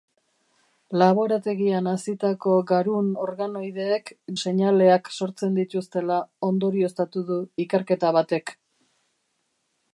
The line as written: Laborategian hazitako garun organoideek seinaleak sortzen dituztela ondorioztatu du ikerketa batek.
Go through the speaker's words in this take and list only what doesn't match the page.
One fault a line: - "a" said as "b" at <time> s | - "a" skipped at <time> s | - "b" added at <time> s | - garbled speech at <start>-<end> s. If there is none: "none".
none